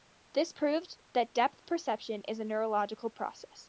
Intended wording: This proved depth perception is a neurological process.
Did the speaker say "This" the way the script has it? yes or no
yes